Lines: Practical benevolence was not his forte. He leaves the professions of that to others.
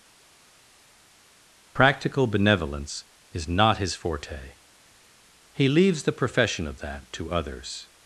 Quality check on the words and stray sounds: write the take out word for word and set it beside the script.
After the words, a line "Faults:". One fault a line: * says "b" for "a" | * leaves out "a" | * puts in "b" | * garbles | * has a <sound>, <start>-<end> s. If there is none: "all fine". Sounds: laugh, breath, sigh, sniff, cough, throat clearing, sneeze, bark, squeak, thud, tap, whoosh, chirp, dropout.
Practical benevolence is not his forte. He leaves the profession of that to others.
Faults:
* says "is" for "was"
* says "profession" for "professions"